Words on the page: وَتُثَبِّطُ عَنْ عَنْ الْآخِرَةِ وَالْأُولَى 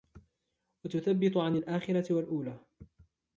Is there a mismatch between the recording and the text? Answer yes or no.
yes